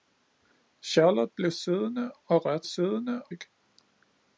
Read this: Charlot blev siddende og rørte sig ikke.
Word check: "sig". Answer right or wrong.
wrong